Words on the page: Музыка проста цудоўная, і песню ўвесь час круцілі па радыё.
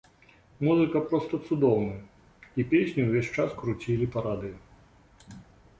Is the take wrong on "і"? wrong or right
right